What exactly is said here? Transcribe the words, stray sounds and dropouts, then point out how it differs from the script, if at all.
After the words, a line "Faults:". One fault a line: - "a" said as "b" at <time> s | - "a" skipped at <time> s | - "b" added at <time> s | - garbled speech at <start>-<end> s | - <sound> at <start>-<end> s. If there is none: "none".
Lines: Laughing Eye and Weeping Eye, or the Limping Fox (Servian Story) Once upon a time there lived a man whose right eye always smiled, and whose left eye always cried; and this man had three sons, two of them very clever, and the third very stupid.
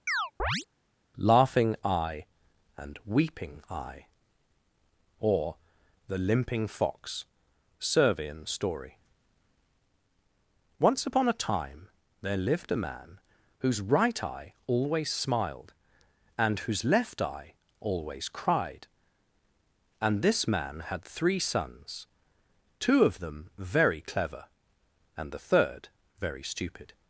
Laughing Eye and Weeping Eye, or the Limping Fox (Servian Story) Once upon a time there lived a man whose right eye always smiled, and whose left eye always cried; and this man had three sons, two of them very clever, and the third very stupid.
Faults:
- chirp at 0.1-0.7 s